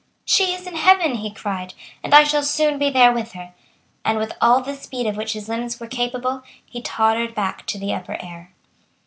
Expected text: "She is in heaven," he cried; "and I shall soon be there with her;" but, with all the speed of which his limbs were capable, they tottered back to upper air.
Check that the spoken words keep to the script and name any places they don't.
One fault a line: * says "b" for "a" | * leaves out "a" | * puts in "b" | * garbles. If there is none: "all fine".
* says "and" for "but"
* says "he" for "they"
* puts in "the"